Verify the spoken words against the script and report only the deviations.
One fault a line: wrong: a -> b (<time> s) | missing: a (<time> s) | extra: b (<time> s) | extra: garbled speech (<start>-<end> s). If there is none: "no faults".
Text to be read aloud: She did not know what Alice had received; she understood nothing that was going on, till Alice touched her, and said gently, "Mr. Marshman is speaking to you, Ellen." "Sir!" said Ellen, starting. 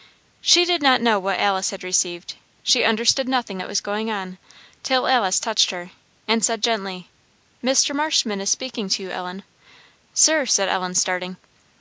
no faults